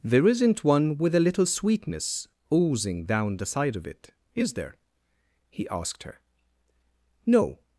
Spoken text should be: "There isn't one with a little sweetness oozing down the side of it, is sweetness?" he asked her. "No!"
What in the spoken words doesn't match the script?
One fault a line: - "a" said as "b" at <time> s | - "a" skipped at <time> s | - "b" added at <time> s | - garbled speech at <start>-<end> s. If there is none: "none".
- "sweetness" said as "there" at 4.5 s